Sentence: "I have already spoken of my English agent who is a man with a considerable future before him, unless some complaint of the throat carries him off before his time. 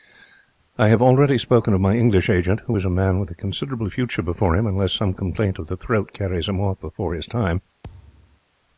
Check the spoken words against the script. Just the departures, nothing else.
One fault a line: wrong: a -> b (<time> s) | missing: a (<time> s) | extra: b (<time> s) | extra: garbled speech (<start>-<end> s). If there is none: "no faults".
no faults